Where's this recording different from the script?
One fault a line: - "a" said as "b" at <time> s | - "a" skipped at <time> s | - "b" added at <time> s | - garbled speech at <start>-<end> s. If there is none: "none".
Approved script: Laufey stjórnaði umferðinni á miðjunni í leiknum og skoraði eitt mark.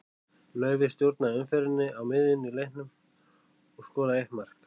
none